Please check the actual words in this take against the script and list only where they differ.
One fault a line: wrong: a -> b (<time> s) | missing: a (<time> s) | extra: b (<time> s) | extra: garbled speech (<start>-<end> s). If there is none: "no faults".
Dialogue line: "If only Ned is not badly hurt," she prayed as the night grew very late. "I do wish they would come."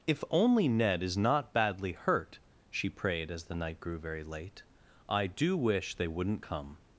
wrong: would -> wouldn't (6.1 s)